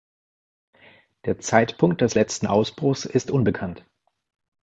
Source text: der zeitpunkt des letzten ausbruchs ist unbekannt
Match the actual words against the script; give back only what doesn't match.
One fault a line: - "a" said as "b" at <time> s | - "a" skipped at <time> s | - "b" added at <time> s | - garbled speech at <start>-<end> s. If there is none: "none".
none